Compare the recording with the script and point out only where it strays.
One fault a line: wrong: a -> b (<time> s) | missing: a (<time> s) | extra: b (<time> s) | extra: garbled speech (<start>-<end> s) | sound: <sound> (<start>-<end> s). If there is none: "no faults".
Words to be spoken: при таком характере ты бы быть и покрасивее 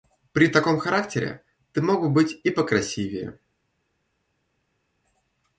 extra: мог (1.8 s)